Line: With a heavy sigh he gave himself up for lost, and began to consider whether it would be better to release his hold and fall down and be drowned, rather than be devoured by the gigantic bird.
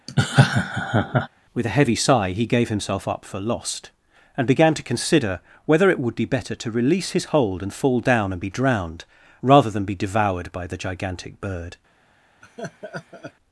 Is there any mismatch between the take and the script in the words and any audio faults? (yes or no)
yes